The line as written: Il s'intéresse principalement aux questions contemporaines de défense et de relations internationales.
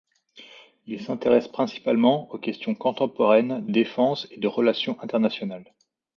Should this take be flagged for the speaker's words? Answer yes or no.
yes